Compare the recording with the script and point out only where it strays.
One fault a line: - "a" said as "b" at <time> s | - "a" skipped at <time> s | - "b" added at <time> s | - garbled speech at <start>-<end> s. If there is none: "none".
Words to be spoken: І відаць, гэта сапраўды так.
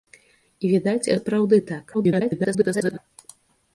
- "гэта" skipped at 1.1 s
- garbled speech at 1.9-3.0 s